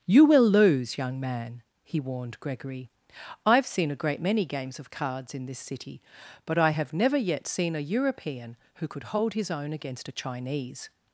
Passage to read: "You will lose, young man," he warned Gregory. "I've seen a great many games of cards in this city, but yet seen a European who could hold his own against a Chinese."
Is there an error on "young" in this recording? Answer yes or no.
no